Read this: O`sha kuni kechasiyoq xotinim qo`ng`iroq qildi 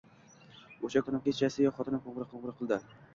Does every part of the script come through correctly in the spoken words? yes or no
no